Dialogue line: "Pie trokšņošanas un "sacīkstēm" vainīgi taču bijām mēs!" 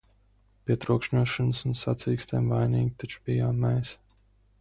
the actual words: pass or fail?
pass